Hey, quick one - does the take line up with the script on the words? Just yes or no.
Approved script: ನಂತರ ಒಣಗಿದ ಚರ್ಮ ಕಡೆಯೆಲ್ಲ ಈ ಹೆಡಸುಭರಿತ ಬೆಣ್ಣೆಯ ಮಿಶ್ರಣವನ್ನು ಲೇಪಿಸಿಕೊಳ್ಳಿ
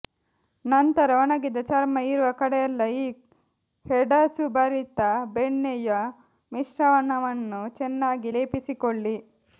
no